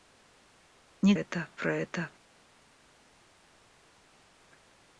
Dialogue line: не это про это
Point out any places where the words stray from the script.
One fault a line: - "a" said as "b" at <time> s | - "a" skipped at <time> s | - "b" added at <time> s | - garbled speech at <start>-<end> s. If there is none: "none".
none